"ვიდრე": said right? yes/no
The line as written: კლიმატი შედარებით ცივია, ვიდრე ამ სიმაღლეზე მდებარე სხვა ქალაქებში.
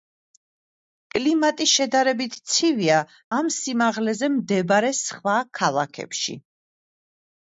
no